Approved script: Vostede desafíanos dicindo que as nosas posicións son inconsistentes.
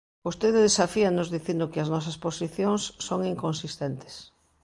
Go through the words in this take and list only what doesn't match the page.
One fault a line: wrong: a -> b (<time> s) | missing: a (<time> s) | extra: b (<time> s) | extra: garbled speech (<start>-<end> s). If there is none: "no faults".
no faults